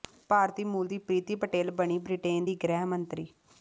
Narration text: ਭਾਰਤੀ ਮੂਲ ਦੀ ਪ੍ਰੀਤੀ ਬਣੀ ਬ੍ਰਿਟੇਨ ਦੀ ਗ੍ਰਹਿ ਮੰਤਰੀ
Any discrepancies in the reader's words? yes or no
yes